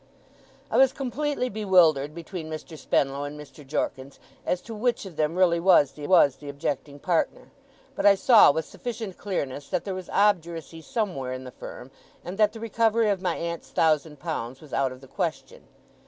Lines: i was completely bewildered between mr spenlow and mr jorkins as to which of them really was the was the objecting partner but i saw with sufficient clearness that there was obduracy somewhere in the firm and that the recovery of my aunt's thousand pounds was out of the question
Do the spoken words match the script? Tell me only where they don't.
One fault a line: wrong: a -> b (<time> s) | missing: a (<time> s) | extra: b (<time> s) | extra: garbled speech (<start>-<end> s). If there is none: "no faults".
no faults